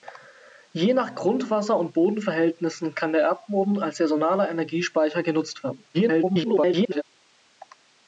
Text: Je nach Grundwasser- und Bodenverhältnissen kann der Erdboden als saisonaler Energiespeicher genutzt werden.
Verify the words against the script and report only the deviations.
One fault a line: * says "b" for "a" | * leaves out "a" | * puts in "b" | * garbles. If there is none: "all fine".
* garbles